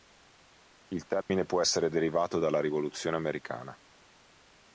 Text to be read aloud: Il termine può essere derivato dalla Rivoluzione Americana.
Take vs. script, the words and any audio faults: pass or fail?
fail